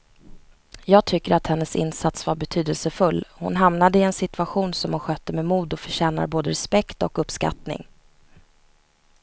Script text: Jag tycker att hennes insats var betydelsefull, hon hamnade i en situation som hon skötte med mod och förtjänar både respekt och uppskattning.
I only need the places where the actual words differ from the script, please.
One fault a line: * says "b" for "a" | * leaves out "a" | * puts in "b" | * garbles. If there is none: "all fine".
all fine